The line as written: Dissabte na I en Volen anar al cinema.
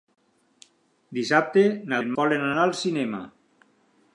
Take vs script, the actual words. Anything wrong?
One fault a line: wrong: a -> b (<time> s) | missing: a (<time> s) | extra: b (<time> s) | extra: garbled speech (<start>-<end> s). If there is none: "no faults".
no faults